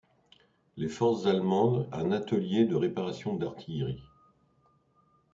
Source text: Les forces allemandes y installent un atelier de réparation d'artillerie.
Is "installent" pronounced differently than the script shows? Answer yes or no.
yes